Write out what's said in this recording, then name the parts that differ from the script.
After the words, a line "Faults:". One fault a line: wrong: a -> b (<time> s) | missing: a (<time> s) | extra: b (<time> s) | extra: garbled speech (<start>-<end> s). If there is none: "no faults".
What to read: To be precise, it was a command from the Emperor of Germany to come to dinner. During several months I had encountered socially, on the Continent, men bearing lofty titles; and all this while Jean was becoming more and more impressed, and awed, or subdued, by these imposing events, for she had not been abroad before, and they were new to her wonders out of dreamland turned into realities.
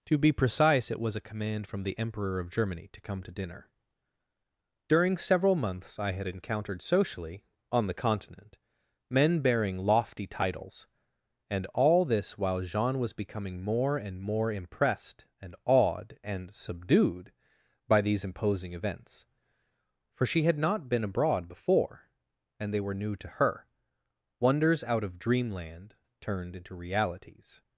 To be precise, it was a command from the Emperor of Germany to come to dinner. During several months I had encountered socially, on the Continent, men bearing lofty titles; and all this while Jean was becoming more and more impressed, and awed, and subdued, by these imposing events, for she had not been abroad before, and they were new to her wonders out of dreamland turned into realities.
Faults:
wrong: or -> and (16.2 s)